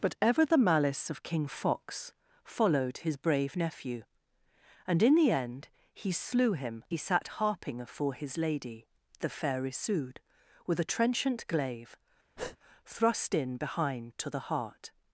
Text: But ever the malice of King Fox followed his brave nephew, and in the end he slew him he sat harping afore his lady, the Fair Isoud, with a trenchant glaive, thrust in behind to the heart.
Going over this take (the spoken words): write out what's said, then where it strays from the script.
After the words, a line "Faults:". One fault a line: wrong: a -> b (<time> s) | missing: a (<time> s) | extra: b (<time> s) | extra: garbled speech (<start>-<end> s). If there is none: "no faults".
But ever the malice of King Fox followed his brave nephew, and in the end he slew him he sat harping afore his lady, the Fair Isoud, with a trenchant glaive, thrust in behind to the heart.
Faults:
no faults